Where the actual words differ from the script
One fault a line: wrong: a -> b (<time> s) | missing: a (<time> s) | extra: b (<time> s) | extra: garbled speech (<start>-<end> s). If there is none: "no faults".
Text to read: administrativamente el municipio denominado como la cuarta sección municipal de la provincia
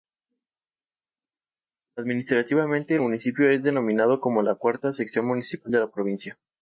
extra: es (3.5 s)